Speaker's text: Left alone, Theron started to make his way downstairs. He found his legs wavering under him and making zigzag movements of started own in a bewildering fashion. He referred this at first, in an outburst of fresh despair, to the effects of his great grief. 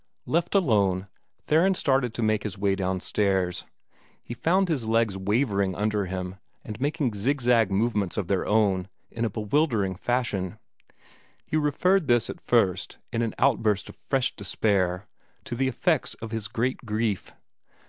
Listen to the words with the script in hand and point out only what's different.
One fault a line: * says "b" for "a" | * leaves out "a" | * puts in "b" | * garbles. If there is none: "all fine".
* says "their" for "started"